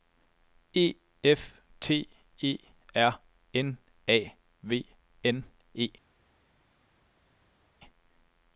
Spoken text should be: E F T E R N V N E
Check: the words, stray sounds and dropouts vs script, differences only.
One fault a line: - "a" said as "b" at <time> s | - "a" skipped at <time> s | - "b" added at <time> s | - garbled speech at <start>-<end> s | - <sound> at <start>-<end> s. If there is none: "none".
- "A" added at 4.1 s